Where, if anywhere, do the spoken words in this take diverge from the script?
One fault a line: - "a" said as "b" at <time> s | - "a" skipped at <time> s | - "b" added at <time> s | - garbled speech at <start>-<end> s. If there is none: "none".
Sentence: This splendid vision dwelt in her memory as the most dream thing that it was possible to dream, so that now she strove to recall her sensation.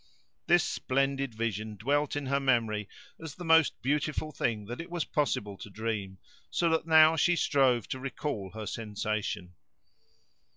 - "dream" said as "beautiful" at 3.8 s